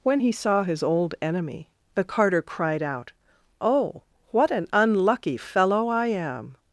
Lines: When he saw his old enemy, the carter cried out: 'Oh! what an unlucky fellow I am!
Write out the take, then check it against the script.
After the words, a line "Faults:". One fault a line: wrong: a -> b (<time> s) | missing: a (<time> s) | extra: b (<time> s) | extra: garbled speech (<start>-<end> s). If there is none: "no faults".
When he saw his old enemy, the carter cried out: 'Oh! what an unlucky fellow I am!
Faults:
no faults